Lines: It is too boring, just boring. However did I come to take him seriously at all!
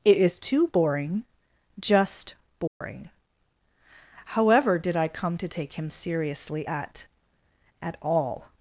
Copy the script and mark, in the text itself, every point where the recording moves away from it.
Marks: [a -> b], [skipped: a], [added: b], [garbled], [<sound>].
It is too boring, just boring. [dropout] However did I come to take him seriously at [added: at] all!